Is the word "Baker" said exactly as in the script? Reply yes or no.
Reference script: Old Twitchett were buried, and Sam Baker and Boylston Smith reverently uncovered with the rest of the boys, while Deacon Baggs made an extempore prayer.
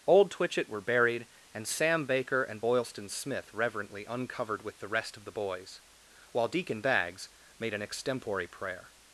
yes